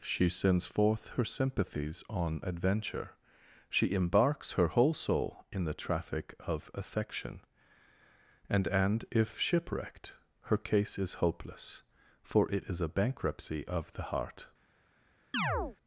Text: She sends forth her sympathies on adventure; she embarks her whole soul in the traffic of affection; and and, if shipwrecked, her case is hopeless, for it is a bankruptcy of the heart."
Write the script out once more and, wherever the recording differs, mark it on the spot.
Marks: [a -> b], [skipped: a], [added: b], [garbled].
She sends forth her sympathies on adventure; she embarks her whole soul in the traffic of affection; and and, if shipwrecked, her case is hopeless, for it is a bankruptcy of the heart."